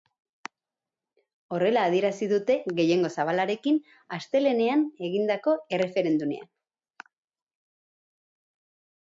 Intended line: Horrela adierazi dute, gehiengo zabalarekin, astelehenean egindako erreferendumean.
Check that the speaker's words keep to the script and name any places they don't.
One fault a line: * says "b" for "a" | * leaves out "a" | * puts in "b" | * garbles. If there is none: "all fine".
all fine